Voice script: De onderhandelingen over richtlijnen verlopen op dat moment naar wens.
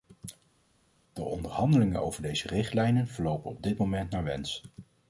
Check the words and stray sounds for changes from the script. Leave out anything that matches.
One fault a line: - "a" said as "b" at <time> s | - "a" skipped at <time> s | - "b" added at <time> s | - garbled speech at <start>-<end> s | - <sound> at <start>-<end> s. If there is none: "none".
- "deze" added at 2.2 s
- "dat" said as "dit" at 3.6 s